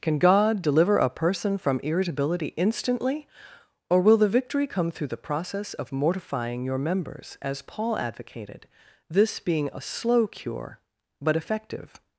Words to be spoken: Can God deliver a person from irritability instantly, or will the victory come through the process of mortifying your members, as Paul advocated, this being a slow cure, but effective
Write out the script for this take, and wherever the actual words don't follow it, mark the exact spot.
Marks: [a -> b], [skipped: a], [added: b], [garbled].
Can God deliver a person from irritability instantly, or will the victory come through the process of mortifying your members, as Paul advocated, this being a slow cure, but effective